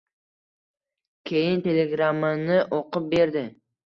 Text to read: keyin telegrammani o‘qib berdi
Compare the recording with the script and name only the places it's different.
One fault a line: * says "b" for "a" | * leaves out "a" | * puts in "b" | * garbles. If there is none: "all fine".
all fine